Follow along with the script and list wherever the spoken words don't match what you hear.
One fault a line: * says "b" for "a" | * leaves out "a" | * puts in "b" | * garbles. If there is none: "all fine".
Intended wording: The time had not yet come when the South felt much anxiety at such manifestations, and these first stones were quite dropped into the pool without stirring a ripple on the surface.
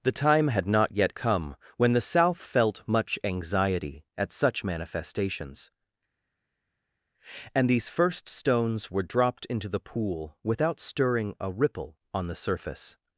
* leaves out "quite"